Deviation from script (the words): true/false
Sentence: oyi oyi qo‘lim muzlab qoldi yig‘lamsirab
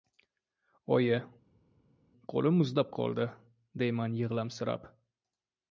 true